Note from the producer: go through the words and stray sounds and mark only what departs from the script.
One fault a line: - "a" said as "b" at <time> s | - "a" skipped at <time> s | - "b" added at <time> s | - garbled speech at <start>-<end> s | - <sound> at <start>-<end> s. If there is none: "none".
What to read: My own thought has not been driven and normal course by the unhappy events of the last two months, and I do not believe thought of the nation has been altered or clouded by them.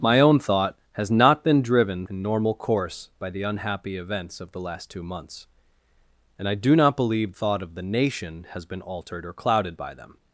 none